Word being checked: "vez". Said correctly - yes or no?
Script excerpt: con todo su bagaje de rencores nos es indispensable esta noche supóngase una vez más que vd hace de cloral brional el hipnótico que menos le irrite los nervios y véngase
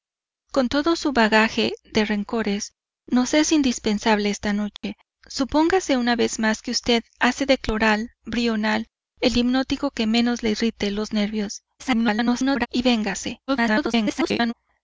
yes